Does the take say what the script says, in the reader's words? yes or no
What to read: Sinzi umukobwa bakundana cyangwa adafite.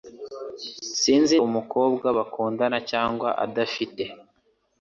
yes